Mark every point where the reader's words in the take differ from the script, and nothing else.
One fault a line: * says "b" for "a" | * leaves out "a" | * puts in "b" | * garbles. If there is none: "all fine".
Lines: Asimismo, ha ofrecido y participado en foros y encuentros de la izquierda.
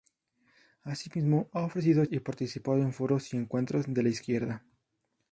all fine